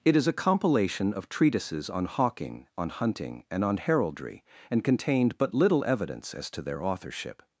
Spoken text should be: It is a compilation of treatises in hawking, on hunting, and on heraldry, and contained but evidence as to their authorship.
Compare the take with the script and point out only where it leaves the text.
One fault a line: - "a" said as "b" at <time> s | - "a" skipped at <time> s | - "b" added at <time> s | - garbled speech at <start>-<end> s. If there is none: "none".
- "in" said as "on" at 1.9 s
- "little" added at 5.5 s